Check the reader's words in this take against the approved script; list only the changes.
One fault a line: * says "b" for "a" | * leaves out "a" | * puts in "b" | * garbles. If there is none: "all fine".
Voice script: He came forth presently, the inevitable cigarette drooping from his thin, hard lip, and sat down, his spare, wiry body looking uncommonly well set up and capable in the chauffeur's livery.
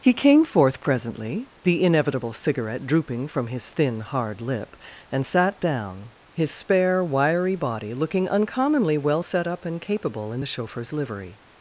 all fine